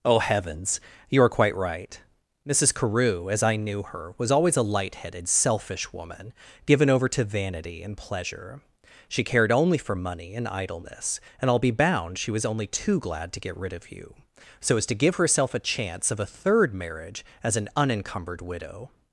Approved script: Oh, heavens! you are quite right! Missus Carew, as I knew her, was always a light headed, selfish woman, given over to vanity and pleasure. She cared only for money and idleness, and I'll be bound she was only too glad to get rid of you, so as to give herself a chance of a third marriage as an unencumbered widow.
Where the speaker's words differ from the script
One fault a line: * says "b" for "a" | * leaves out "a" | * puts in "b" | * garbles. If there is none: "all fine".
all fine